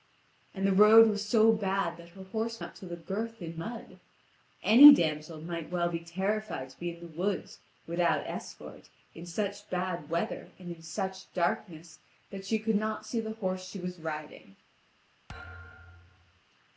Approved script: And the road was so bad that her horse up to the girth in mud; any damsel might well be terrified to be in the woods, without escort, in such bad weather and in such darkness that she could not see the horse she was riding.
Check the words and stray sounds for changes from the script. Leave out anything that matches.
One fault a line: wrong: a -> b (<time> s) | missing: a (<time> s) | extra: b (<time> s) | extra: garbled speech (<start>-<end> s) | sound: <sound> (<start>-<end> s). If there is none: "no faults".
sound: thud (15.3-16.4 s)